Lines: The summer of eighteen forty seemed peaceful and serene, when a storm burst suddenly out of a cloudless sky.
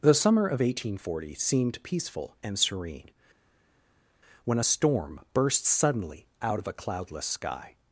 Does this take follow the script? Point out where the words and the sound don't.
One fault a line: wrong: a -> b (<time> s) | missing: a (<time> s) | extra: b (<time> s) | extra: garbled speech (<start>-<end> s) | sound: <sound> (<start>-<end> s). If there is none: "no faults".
no faults